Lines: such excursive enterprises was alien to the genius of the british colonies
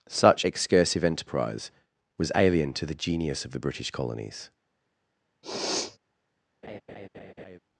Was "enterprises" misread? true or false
true